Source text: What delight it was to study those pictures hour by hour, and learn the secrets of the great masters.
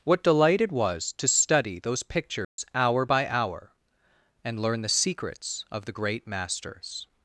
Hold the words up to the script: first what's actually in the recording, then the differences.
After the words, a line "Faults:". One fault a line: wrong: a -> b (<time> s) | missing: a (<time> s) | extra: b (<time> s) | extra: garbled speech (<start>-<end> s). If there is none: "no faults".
What delight it was to study those pictures hour by hour, and learn the secrets of the great masters.
Faults:
no faults